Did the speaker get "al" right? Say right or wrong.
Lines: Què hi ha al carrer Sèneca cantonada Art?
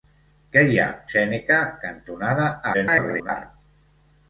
wrong